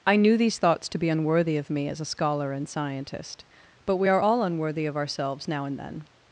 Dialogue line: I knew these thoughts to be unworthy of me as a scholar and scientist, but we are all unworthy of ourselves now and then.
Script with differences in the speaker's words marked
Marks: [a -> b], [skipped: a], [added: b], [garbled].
I knew these thoughts to be unworthy of me as a scholar and scientist, but we are all unworthy of ourselves now and then.